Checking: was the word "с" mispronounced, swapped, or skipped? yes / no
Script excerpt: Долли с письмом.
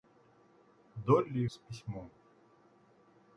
no